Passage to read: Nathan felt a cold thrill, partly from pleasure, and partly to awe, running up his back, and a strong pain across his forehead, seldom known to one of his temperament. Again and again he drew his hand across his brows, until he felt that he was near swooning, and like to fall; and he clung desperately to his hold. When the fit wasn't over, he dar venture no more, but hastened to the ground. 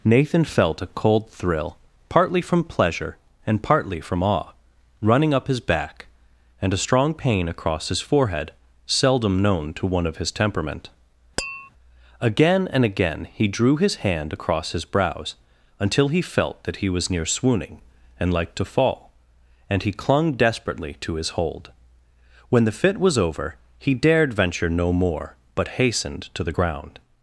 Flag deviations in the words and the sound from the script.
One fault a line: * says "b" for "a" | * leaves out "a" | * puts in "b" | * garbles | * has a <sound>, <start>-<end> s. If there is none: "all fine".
* says "from" for "to"
* has a tap, 11.4-11.7 s
* says "was" for "wasn't"
* says "dared" for "dar"